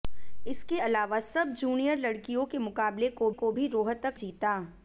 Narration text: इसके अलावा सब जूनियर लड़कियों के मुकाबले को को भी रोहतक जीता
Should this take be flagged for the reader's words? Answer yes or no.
no